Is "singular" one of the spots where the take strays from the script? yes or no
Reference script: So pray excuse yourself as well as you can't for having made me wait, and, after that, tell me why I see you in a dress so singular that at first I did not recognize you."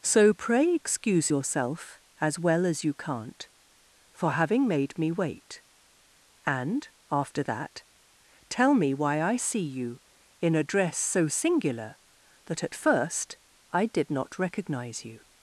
no